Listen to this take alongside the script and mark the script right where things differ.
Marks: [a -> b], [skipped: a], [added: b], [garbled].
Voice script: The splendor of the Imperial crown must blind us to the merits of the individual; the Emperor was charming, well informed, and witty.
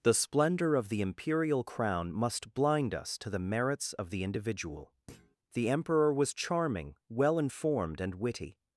The splendor of the Imperial crown must blind us to the merits of the individual; the Emperor was charming, well informed, and witty.